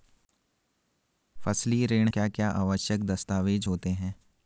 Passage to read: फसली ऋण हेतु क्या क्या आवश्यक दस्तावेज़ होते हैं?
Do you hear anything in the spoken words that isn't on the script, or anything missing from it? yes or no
yes